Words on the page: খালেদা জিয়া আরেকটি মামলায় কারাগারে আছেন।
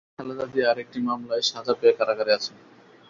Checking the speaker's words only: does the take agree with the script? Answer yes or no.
no